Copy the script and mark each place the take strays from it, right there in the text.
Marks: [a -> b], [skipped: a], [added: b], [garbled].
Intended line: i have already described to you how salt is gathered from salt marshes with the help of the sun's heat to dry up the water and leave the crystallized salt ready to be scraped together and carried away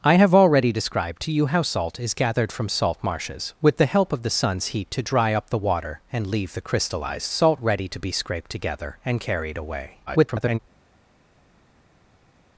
i have already described to you how salt is gathered from salt marshes with the help of the sun's heat to dry up the water and leave the crystallized salt ready to be scraped together and carried away [garbled]